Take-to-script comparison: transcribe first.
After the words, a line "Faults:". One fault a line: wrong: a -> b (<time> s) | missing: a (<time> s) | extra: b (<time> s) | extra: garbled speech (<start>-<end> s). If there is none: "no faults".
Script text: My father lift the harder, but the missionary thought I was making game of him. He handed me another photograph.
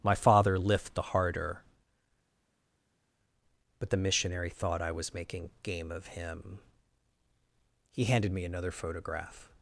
My father lift the harder, but the missionary thought I was making game of him. He handed me another photograph.
Faults:
no faults